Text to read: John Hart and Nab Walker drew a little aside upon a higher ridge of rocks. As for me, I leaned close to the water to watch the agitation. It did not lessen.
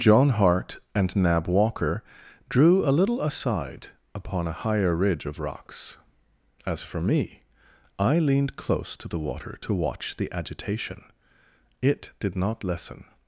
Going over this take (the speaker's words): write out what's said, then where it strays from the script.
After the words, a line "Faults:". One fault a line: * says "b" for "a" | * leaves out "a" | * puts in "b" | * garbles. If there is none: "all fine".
John Hart and Nab Walker drew a little aside upon a higher ridge of rocks. As for me, I leaned close to the water to watch the agitation. It did not lessen.
Faults:
all fine